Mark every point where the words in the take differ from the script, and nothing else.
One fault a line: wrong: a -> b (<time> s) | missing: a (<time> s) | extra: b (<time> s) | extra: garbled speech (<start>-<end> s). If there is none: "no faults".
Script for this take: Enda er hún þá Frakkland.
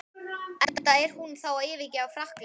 extra: að yfirgefa (1.5 s)